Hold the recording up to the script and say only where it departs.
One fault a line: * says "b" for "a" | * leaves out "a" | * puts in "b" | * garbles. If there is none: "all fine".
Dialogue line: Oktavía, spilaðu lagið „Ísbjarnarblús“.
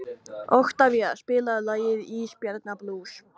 all fine